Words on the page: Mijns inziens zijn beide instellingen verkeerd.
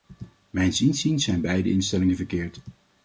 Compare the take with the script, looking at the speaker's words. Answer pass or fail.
pass